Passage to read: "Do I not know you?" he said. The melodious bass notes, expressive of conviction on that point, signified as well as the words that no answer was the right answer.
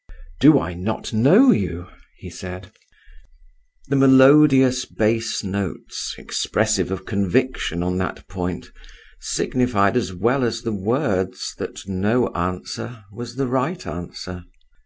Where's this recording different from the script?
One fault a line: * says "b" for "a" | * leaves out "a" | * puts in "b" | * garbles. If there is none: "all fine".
all fine